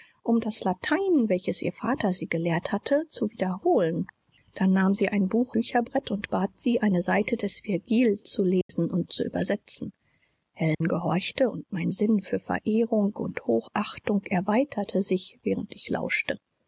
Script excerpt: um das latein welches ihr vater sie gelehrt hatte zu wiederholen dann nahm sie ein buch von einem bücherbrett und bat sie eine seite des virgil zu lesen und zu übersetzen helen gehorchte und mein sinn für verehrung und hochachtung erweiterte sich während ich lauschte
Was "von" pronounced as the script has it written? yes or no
no